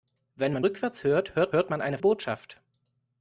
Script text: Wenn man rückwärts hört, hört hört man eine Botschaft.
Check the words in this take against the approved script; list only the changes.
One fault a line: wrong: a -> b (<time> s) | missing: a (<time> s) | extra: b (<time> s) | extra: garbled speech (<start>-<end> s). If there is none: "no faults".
no faults